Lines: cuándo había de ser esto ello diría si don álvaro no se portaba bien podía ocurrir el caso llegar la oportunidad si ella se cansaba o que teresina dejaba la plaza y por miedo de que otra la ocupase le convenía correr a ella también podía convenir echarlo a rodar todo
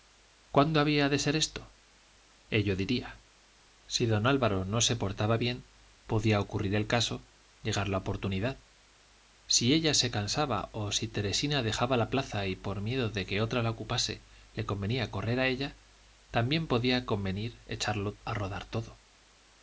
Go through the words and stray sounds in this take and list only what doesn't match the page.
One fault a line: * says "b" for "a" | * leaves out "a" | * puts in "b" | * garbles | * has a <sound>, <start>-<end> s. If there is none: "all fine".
* says "si" for "que"